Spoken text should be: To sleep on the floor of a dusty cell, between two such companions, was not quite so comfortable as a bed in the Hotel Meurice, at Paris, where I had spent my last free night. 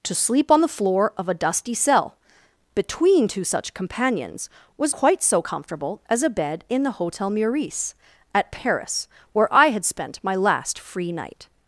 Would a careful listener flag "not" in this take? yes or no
yes